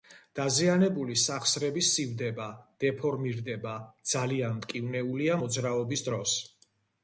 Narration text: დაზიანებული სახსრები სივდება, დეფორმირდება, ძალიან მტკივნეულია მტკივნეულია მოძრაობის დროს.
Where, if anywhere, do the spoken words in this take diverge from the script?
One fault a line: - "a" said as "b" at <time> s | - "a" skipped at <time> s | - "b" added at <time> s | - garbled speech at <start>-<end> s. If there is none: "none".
- "მტკივნეულია" skipped at 5.4 s